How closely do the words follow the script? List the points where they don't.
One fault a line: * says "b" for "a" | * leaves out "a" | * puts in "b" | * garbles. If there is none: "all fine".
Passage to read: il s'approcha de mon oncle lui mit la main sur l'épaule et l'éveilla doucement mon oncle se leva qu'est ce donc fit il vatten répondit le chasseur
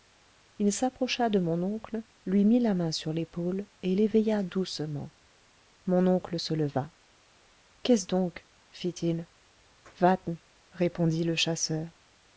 all fine